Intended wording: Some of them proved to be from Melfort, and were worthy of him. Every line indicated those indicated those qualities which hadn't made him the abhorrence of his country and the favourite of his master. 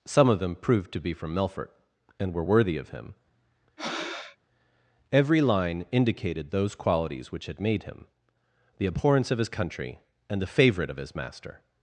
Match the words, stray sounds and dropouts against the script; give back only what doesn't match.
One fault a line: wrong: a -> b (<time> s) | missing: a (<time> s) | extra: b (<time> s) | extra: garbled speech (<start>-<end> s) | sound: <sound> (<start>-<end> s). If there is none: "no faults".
sound: breath (3.8-4.4 s)
missing: indicated those (6.8 s)
wrong: hadn't -> had (7.5 s)